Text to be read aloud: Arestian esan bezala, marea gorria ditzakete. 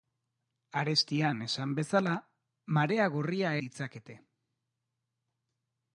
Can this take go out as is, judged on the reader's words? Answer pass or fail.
pass